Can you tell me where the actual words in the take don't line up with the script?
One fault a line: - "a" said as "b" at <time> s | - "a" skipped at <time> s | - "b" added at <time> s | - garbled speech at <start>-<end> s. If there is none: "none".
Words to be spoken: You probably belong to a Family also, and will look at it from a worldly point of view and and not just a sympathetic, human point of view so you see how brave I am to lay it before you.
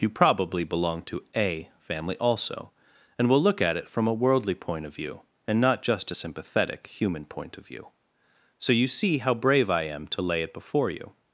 - "and" skipped at 5.6 s